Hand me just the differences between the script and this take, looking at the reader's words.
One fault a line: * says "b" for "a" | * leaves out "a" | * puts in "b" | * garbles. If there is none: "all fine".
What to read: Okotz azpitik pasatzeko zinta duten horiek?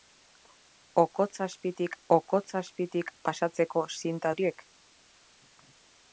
* puts in "okotz azpitik"
* leaves out "duten"